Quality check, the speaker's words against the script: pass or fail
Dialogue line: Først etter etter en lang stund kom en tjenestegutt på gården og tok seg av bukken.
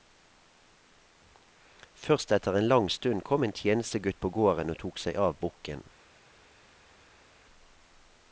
fail